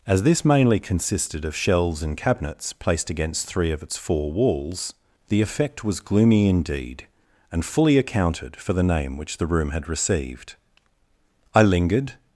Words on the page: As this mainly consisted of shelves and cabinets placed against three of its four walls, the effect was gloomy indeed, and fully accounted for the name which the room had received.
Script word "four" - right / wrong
right